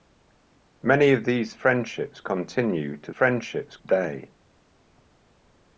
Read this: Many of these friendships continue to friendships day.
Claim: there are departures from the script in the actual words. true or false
false